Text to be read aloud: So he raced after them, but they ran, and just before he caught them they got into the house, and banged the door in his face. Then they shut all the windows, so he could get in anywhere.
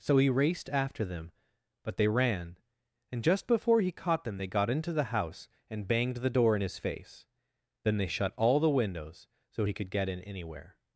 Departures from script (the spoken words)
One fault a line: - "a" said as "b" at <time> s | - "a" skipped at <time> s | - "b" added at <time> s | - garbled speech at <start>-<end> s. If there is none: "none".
none